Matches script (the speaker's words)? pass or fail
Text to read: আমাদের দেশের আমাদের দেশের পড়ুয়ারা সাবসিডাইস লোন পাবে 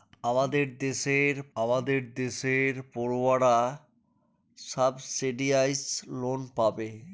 pass